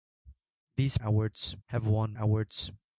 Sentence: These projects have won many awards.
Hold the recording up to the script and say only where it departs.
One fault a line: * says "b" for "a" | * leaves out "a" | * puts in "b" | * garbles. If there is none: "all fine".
* says "awards" for "projects"
* leaves out "many"